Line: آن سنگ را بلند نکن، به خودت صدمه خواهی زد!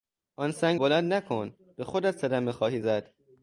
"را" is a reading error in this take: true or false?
true